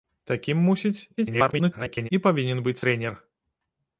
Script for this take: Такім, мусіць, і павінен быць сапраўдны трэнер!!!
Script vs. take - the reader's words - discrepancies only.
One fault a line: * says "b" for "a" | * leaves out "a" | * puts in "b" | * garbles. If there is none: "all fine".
* garbles
* leaves out "сапраўдны"